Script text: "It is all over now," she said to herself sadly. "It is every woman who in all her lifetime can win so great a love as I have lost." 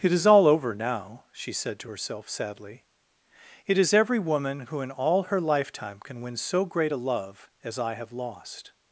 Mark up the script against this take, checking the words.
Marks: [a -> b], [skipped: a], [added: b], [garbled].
"It is all over now," she said to herself sadly. "It is every woman who in all her lifetime can win so great a love as I have lost."